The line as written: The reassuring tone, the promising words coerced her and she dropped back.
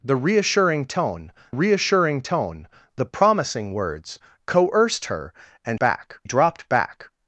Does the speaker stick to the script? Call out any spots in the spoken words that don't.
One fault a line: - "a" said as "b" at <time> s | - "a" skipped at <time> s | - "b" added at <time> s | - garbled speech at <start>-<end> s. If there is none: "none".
- "reassuring tone" added at 1.5 s
- "she" said as "back" at 5.8 s